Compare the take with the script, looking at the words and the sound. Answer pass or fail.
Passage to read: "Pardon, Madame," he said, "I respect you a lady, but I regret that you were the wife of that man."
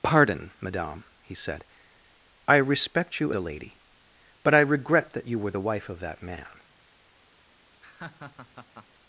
fail